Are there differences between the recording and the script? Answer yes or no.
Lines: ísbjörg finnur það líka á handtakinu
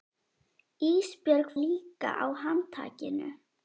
yes